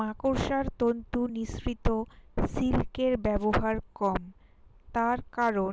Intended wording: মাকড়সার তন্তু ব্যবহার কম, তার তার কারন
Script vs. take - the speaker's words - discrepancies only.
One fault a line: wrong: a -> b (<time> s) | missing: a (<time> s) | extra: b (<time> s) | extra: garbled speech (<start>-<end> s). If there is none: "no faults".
extra: নিঃসৃত সিল্কের (1.4 s)
missing: তার (5.2 s)